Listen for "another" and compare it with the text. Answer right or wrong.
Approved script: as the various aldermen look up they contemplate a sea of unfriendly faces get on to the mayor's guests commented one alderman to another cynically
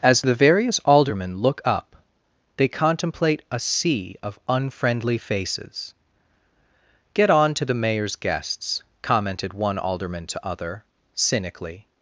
wrong